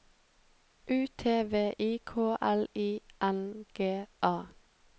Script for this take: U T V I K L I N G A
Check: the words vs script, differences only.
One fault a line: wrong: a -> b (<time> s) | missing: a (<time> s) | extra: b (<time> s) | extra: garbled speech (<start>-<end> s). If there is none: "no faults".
no faults